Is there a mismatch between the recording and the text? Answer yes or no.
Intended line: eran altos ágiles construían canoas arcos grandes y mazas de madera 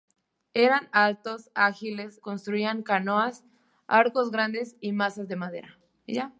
no